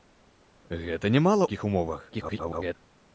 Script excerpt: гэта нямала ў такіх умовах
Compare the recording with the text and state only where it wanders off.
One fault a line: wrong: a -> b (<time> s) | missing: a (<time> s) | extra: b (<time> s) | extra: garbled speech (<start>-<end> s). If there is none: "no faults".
missing: ў (1.4 s)
extra: garbled speech (2.1-2.8 s)